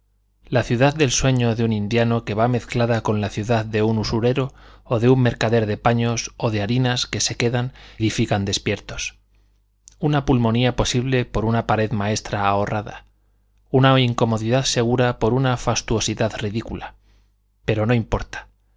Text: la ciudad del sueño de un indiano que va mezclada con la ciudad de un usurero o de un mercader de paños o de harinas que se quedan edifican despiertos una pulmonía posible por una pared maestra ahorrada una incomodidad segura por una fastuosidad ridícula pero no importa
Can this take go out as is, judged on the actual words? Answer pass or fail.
pass